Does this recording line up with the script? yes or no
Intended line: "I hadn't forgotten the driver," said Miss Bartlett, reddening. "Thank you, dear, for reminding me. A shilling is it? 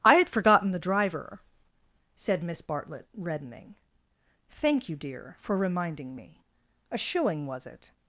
no